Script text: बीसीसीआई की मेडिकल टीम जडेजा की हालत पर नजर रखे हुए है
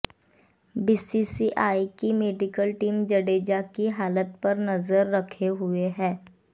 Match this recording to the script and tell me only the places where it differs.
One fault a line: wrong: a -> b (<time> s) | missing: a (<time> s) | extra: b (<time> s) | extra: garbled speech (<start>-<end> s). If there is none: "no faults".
no faults